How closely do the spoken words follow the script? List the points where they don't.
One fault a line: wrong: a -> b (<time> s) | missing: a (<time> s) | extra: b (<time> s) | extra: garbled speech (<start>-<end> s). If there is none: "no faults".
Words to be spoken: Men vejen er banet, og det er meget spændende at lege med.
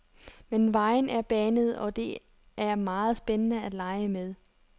no faults